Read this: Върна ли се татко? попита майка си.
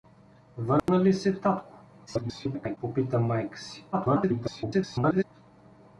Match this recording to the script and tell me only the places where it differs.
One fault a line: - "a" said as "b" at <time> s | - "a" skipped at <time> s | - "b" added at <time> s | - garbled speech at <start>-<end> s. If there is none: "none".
- garbled speech at 2.1-2.8 s
- garbled speech at 3.9-5.2 s